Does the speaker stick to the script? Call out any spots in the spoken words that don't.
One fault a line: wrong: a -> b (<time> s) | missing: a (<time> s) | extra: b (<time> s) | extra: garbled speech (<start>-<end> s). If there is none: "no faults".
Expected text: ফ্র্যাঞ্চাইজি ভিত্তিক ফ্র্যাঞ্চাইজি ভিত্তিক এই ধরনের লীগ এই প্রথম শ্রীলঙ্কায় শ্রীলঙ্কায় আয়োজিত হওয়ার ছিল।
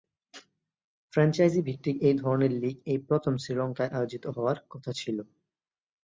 missing: ফ্র্যাঞ্চাইজি ভিত্তিক (1.9 s)
missing: শ্রীলঙ্কায় (3.9 s)
extra: কথা (4.7 s)